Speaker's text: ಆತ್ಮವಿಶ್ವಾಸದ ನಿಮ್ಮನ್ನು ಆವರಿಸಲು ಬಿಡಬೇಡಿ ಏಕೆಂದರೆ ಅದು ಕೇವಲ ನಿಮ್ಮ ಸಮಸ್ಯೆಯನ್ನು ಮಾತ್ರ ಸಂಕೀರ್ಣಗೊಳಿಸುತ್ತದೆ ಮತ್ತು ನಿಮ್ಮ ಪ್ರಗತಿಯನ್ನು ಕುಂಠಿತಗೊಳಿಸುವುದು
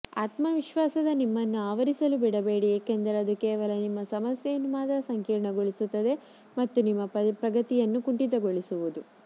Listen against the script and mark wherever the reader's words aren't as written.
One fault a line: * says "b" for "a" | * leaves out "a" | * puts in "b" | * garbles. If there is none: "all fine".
all fine